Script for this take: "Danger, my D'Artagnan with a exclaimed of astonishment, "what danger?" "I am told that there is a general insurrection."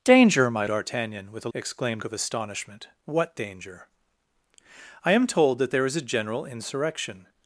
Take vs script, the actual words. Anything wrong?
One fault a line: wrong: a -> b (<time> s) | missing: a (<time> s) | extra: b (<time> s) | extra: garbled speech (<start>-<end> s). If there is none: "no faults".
no faults